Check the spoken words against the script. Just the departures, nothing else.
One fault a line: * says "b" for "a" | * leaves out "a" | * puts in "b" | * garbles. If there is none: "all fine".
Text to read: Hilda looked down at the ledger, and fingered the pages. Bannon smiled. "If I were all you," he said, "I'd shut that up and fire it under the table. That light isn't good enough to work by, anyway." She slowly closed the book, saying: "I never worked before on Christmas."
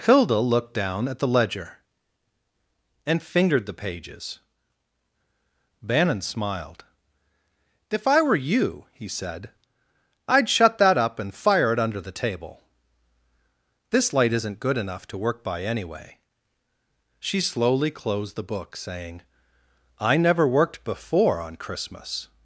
* leaves out "all"
* says "This" for "That"